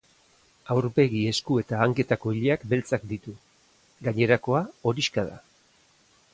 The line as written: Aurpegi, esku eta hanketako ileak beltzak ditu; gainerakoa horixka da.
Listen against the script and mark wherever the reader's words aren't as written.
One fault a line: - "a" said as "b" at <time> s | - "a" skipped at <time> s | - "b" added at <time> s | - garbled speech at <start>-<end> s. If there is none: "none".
none